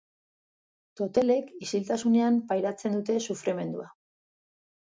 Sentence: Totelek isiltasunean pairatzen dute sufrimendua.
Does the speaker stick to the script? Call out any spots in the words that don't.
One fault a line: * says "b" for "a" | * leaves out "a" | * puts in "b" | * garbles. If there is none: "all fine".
all fine